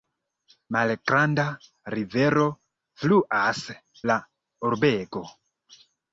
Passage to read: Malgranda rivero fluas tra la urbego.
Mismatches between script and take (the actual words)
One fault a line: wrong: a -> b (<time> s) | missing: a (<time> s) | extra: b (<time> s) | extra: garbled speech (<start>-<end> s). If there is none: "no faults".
missing: tra (3.6 s)